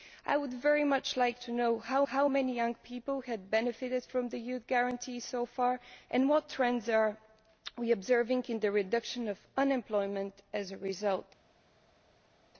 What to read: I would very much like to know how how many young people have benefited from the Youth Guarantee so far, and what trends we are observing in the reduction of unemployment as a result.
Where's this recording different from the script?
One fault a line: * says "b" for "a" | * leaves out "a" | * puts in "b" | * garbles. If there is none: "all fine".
all fine